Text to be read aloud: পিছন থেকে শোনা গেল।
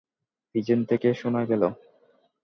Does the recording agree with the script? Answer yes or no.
yes